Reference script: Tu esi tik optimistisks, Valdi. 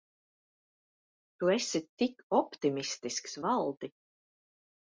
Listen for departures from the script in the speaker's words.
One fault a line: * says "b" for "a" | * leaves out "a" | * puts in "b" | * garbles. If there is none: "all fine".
all fine